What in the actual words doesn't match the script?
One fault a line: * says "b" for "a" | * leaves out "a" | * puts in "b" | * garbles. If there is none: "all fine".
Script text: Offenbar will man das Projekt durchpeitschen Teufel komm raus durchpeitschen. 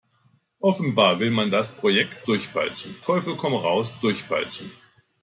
all fine